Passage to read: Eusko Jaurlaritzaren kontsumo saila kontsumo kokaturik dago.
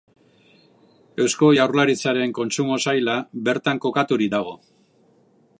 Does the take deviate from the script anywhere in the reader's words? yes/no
yes